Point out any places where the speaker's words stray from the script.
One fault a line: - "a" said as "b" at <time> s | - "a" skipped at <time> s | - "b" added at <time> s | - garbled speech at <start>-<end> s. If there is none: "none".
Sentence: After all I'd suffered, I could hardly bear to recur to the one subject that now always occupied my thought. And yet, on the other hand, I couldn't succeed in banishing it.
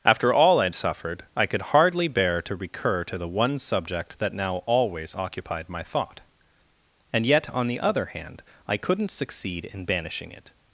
none